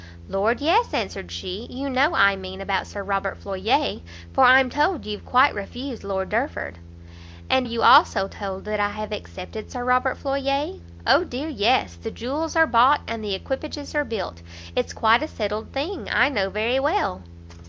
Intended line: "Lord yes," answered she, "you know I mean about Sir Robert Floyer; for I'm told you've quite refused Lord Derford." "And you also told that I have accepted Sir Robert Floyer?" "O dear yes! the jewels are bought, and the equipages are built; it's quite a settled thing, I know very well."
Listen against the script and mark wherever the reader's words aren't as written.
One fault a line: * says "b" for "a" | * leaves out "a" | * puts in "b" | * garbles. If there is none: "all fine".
all fine